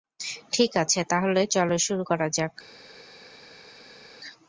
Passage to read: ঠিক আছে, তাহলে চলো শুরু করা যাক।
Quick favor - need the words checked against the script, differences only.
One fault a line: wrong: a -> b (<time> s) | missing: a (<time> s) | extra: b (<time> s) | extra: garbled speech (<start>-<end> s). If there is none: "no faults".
no faults